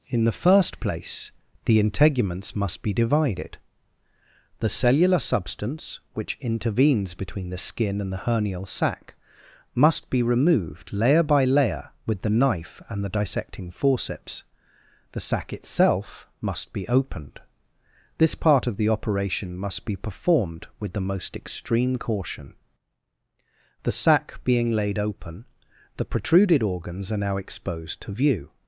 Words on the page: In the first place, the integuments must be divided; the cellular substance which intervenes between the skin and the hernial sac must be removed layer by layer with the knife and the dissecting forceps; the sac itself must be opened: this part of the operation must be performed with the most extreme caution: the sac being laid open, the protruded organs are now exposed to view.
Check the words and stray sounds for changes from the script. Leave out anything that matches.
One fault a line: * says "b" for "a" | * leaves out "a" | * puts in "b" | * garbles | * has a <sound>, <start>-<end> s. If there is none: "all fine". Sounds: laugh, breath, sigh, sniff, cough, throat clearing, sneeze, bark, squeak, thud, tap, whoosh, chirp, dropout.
all fine